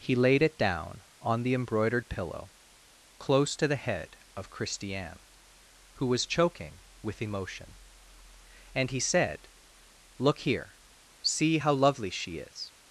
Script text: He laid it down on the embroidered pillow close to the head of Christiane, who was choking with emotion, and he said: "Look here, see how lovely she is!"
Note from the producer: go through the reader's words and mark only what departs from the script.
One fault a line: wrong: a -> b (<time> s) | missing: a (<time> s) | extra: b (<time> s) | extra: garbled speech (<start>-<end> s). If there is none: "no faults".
no faults